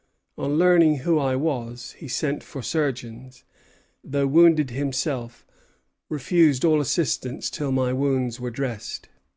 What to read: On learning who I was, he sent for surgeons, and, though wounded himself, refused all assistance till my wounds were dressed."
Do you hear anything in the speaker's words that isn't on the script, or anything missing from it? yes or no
yes